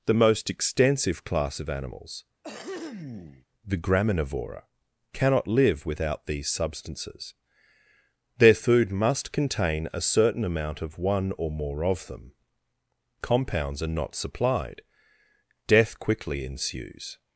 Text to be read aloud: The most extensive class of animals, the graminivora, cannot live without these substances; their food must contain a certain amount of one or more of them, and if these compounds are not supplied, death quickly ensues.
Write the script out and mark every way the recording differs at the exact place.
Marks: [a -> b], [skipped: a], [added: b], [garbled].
The most extensive class of animals, the graminivora, cannot live without these substances; their food must contain a certain amount of one or more of them, [skipped: and if these] compounds are not supplied, death quickly ensues.